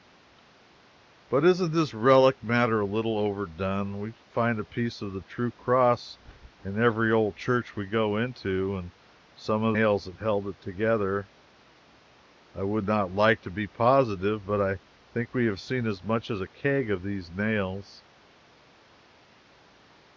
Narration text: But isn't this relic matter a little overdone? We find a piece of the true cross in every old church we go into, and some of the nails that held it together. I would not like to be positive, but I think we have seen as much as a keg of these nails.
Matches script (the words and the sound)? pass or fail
fail